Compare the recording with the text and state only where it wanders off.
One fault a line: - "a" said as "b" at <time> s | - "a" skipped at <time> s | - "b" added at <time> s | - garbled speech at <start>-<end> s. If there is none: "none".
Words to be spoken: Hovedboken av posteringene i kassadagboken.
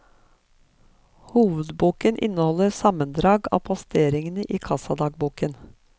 - "inneholder sammendrag" added at 2.2 s